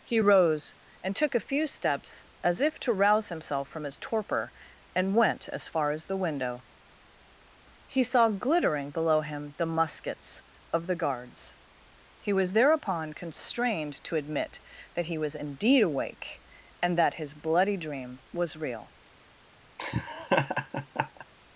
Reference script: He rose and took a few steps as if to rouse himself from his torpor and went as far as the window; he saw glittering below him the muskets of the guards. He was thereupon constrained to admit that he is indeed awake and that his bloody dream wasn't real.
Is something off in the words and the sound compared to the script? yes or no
yes